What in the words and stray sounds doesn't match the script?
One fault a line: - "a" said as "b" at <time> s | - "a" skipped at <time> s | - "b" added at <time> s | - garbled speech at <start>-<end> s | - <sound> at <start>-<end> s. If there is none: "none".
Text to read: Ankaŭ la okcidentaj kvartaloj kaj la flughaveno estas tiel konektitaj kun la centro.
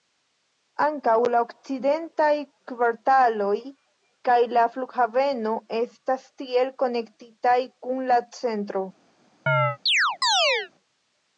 - chirp at 9.5-10.7 s